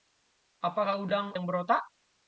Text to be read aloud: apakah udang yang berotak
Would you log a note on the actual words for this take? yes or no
no